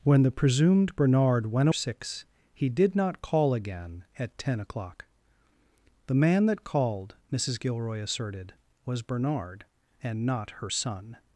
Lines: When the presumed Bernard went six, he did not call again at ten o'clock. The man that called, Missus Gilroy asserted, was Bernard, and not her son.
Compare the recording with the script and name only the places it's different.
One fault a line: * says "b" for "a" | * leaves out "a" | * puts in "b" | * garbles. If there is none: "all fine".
all fine